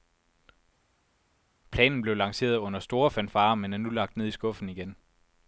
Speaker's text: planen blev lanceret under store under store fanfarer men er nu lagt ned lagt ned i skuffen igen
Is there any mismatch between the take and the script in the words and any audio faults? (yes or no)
yes